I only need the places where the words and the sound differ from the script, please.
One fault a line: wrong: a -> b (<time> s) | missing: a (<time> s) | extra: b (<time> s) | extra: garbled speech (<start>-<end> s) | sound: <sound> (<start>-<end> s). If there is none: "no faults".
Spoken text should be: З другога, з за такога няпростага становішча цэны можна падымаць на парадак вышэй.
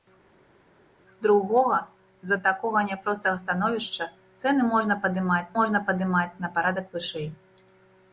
extra: можна падымаць (5.6 s)